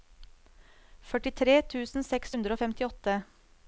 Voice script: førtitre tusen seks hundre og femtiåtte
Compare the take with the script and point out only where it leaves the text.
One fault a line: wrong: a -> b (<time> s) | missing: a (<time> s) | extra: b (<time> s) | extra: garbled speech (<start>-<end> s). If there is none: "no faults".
no faults